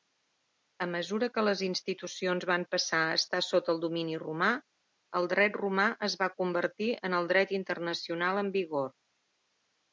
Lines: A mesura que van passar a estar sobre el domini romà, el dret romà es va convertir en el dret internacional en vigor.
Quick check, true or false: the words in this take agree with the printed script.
false